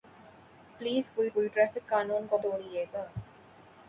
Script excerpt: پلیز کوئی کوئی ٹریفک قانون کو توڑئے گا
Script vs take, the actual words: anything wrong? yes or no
no